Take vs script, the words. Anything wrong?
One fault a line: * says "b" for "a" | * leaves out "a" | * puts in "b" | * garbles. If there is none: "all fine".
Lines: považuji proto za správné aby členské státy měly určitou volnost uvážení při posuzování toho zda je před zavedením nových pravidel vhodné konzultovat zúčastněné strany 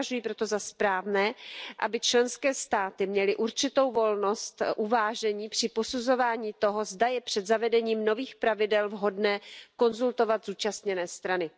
all fine